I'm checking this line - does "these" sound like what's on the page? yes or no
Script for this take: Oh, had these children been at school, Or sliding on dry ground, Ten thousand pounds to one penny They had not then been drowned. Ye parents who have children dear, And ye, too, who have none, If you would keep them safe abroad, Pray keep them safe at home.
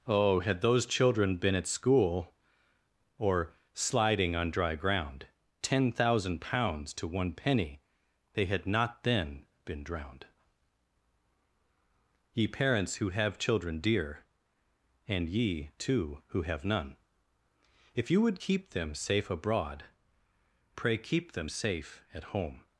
no